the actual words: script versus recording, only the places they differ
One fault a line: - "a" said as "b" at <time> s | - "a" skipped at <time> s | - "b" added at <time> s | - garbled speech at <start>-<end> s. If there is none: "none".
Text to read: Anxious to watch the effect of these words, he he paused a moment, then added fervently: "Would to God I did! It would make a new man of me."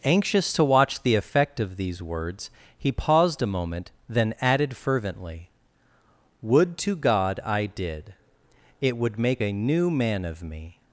- "he" skipped at 2.9 s